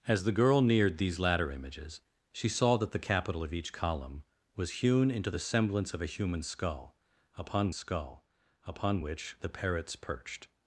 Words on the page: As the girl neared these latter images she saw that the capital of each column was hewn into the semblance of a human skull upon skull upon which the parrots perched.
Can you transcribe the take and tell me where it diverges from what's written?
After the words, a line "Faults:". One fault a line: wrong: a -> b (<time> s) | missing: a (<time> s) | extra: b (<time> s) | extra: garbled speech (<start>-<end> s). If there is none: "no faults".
As the girl neared these latter images she saw that the capital of each column was hewn into the semblance of a human skull upon skull upon which the parrots perched.
Faults:
no faults